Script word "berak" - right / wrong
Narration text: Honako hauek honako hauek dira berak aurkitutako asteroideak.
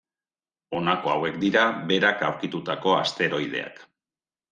right